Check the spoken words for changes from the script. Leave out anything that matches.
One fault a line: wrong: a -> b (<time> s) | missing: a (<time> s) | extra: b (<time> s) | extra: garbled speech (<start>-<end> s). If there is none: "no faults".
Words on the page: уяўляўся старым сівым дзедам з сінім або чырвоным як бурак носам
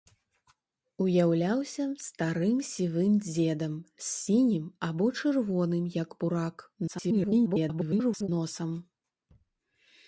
extra: garbled speech (6.9-8.3 s)